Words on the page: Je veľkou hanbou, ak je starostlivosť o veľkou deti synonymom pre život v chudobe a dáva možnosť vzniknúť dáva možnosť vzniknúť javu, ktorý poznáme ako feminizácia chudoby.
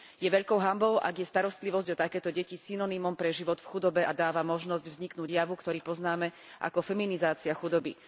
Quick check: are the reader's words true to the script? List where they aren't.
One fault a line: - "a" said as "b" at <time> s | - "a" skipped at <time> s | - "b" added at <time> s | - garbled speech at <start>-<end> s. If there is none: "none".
- "veľkou" said as "takéto" at 2.0 s
- "dáva možnosť vzniknúť" skipped at 5.3 s